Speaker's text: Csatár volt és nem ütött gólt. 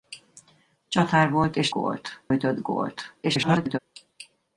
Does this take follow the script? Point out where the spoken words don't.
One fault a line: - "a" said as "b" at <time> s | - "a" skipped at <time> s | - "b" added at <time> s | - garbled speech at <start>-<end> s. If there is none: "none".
- "nem" said as "gólt" at 1.7 s
- garbled speech at 3.2-3.8 s